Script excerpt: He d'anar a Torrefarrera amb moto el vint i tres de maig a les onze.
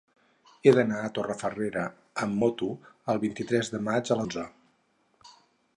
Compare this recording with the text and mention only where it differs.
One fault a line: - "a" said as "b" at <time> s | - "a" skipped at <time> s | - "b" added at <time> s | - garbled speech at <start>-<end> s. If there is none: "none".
- "les" skipped at 4.2 s